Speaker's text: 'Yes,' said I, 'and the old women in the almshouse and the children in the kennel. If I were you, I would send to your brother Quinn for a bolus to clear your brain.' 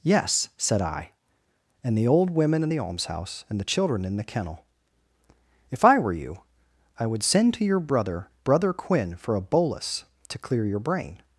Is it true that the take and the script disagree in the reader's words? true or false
true